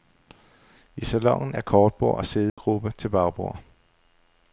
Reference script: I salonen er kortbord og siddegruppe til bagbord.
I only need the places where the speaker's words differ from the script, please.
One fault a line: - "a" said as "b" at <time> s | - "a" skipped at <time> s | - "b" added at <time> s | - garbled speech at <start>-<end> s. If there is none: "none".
none